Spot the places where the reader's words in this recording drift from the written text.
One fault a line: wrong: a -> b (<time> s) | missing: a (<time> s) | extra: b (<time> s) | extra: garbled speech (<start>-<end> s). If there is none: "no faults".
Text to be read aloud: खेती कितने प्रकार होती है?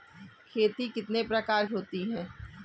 no faults